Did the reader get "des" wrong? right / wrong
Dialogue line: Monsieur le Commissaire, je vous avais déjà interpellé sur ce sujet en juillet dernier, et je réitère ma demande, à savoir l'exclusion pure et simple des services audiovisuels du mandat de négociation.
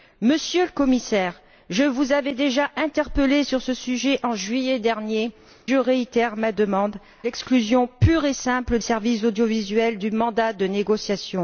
wrong